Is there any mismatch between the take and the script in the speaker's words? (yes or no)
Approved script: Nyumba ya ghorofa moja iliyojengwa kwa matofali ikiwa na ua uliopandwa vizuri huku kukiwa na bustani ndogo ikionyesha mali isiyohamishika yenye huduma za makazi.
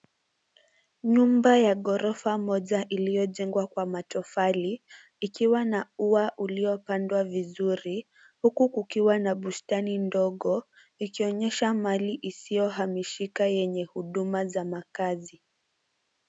no